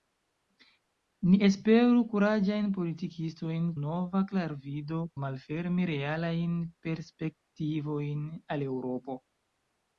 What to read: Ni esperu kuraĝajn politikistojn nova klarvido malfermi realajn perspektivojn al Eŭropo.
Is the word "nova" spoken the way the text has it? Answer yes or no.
yes